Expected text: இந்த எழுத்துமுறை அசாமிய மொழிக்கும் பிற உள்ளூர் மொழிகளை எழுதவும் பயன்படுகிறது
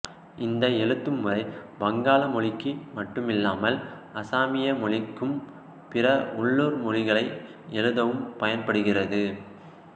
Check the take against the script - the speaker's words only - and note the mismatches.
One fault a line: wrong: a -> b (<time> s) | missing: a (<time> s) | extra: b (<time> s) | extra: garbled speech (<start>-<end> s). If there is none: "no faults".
extra: வங்காள மொழிக்கு மட்டுமில்லாமல் (1.8 s)